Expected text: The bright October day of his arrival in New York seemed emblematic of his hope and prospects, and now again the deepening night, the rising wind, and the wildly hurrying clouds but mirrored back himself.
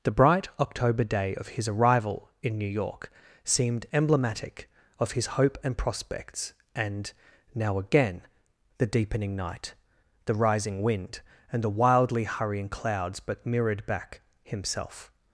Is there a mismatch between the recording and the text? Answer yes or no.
no